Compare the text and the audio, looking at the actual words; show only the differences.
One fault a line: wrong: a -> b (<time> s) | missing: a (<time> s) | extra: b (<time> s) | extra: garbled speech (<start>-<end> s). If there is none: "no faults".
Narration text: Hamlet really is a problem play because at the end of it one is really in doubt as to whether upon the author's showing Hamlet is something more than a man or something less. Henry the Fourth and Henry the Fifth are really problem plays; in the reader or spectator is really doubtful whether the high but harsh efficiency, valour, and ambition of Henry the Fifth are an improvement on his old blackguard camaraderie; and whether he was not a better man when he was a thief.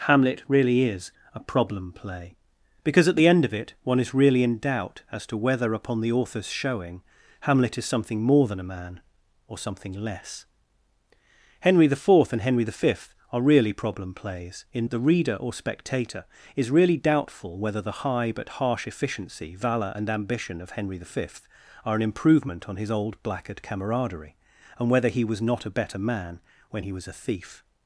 no faults